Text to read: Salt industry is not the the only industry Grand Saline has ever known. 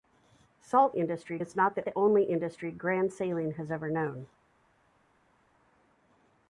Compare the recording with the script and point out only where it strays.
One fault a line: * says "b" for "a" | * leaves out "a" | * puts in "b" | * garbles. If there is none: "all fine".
all fine